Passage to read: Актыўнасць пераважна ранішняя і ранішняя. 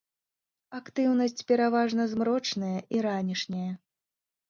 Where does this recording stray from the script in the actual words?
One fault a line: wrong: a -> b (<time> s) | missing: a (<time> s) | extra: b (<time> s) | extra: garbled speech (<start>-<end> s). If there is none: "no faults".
wrong: ранішняя -> змрочная (2.2 s)